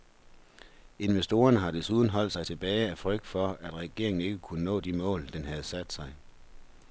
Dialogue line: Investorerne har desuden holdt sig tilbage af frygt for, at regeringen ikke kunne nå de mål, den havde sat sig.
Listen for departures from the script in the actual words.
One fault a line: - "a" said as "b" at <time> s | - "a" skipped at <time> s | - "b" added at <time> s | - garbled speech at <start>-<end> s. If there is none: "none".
none